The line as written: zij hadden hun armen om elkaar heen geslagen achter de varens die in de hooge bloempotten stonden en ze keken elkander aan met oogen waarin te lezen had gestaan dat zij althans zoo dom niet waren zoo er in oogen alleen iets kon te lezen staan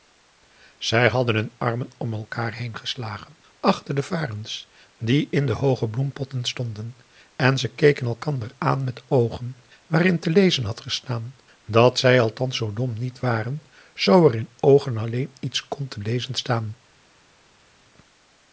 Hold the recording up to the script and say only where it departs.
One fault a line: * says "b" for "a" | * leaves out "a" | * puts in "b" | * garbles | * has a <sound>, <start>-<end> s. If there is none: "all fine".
all fine